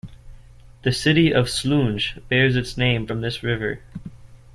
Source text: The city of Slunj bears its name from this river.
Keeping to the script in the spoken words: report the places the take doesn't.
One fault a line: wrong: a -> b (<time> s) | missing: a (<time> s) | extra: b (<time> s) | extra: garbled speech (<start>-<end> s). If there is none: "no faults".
no faults